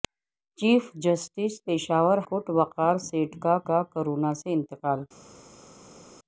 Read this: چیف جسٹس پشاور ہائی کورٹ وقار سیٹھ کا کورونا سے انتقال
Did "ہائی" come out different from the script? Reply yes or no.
yes